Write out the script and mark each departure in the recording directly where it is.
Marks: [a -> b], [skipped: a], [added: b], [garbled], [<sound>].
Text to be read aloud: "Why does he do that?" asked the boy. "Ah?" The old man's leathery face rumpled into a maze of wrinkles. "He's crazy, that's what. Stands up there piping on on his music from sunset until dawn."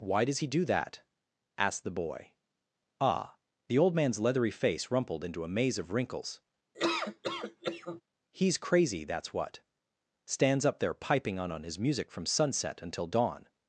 "Why does he do that?" asked the boy. "Ah?" The old man's leathery face rumpled into a maze of wrinkles. [laugh] "He's crazy, that's what. Stands up there piping on on his music from sunset until dawn."